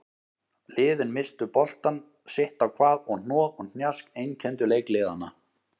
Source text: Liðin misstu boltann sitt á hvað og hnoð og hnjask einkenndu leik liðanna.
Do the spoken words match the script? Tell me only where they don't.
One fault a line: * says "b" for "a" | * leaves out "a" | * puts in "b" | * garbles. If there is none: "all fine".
all fine